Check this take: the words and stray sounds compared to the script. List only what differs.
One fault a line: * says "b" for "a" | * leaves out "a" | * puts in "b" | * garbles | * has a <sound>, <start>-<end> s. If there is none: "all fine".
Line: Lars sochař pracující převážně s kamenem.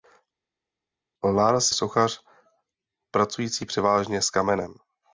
all fine